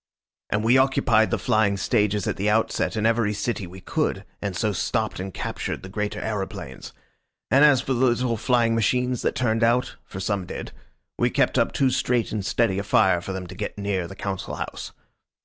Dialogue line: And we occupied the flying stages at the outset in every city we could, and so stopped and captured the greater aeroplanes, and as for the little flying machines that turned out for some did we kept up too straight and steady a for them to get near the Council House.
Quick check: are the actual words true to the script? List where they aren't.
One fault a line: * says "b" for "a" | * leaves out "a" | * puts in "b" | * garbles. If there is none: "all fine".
* puts in "fire"